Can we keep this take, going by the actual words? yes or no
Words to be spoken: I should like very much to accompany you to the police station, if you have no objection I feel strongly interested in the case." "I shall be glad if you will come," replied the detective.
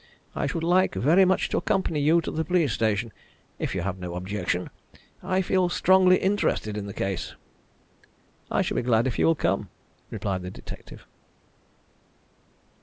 yes